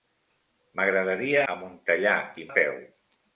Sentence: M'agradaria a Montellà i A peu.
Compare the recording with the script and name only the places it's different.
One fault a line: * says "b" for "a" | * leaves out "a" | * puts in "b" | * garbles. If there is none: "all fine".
all fine